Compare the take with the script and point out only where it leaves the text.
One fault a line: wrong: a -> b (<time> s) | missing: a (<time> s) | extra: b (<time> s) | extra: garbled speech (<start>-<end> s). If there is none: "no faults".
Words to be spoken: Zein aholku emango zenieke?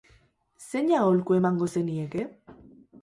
no faults